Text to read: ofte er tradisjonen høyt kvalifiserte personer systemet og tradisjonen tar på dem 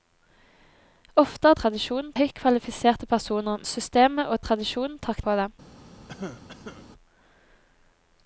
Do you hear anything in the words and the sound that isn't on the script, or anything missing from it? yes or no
yes